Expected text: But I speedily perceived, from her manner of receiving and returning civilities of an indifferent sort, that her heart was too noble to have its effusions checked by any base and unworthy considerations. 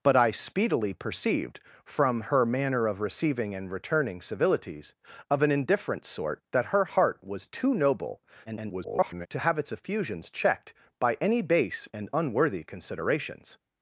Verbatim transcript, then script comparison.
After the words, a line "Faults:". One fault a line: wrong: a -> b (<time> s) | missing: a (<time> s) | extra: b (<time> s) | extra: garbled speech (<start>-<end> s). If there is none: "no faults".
But I speedily perceived, from her manner of receiving and returning civilities of an indifferent sort, that her heart was too noble [garbled] to have its effusions checked by any base and unworthy considerations.
Faults:
extra: garbled speech (8.5-9.3 s)